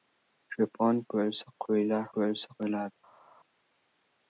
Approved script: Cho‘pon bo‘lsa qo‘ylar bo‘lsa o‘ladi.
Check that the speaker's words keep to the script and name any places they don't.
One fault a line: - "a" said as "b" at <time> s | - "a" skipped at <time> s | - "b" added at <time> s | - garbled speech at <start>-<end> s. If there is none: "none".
none